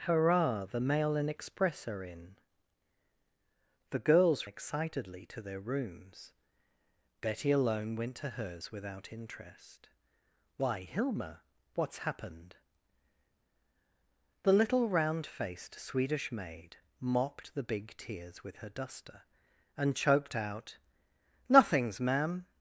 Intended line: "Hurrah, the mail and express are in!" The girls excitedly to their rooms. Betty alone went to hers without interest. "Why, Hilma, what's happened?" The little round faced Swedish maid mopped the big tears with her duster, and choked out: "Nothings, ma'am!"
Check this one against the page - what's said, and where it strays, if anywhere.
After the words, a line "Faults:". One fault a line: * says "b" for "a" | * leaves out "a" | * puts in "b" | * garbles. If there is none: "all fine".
"Hurrah, the mail and express are in!" The girls excitedly to their rooms. Betty alone went to hers without interest. "Why, Hilma, what's happened?" The little round faced Swedish maid mopped the big tears with her duster, and choked out: "Nothings, ma'am!"
Faults:
all fine